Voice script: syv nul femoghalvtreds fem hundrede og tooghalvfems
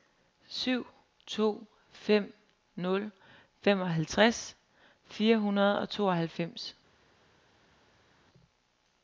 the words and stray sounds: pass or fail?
fail